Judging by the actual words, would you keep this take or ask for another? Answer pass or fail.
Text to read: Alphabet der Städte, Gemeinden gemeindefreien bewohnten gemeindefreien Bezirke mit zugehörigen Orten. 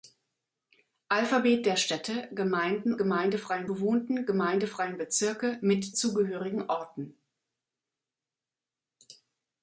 pass